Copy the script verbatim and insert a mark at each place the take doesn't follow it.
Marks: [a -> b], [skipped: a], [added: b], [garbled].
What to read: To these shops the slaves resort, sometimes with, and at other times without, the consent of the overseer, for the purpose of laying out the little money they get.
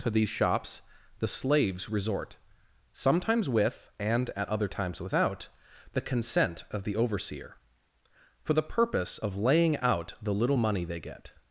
To these shops the slaves resort, sometimes with, and at other times without, the consent of the overseer, for the purpose of laying out the little money they get.